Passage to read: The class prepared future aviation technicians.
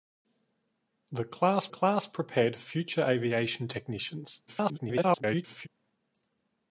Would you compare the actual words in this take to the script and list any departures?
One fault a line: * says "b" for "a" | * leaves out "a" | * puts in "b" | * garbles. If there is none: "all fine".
* puts in "class"
* garbles